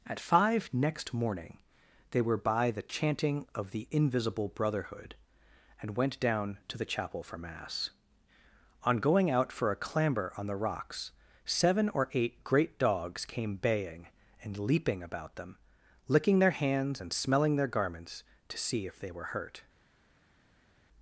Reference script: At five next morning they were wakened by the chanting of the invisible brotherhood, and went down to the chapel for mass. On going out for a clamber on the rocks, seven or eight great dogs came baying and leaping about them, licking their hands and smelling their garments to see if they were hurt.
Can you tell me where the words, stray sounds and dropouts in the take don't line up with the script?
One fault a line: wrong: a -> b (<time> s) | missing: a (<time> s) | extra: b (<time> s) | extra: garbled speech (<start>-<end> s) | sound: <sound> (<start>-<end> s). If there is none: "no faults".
missing: wakened (2.4 s)